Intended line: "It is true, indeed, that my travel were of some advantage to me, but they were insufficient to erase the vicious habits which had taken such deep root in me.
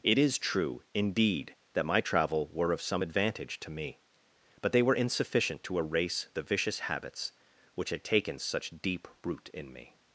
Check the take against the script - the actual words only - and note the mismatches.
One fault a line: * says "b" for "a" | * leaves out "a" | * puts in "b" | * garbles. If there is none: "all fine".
all fine